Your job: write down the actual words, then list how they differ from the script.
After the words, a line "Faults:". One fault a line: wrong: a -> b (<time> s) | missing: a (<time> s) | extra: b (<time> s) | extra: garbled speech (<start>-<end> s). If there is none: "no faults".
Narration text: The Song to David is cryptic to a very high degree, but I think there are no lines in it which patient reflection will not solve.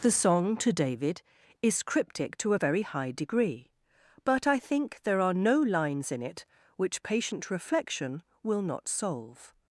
The Song to David is cryptic to a very high degree, but I think there are no lines in it which patient reflection will not solve.
Faults:
no faults